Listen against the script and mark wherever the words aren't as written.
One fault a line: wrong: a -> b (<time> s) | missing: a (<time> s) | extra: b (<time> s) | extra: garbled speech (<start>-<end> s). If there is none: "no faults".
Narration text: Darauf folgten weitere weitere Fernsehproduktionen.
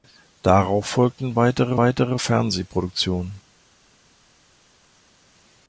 no faults